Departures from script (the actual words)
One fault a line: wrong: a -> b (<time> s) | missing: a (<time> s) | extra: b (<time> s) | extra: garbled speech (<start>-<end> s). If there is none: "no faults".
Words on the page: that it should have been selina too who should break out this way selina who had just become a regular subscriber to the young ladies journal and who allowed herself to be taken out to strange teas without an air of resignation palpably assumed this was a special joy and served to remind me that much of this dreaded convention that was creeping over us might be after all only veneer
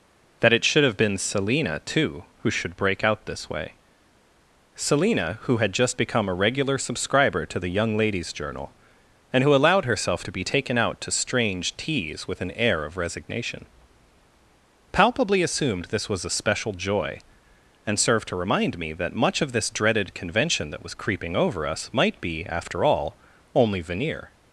wrong: without -> with (12.3 s)